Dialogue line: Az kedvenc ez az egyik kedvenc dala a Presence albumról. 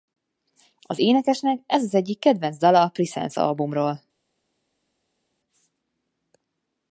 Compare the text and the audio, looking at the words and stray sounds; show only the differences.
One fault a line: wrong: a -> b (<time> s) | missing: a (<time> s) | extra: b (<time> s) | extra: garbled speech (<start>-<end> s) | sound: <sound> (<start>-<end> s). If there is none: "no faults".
wrong: kedvenc -> énekesnek (1.0 s)